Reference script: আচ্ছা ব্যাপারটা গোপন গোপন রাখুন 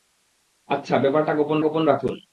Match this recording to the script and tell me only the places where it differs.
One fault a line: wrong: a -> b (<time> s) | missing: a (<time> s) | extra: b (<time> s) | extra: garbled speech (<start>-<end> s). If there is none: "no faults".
no faults